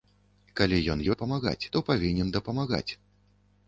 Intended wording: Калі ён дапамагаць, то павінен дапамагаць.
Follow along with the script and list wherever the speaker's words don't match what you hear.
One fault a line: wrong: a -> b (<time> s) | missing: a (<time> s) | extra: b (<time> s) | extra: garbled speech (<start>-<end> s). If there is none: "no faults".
no faults